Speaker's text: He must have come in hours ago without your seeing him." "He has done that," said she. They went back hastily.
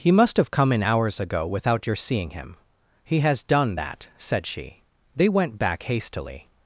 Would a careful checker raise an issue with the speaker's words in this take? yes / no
no